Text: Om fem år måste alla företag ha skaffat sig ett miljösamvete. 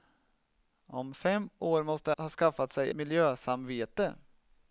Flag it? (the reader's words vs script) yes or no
yes